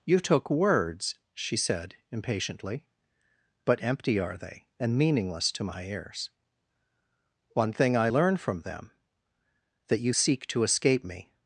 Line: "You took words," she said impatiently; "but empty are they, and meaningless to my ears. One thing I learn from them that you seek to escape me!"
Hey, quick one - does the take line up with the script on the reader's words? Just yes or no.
yes